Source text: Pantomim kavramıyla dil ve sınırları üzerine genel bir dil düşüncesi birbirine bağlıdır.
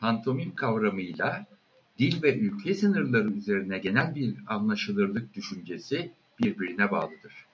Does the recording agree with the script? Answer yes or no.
no